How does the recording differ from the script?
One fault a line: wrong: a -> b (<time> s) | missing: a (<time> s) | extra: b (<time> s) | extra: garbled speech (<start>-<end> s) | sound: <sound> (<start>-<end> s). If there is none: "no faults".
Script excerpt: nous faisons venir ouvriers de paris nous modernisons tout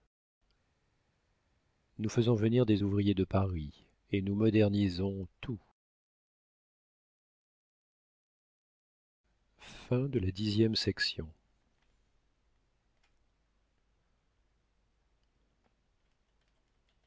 extra: des (2.7 s)
extra: et (4.1 s)